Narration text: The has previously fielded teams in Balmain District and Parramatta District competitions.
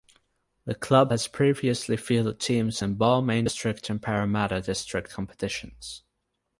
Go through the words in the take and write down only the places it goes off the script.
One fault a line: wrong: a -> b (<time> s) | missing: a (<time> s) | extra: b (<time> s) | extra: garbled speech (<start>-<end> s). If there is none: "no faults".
extra: club (0.7 s)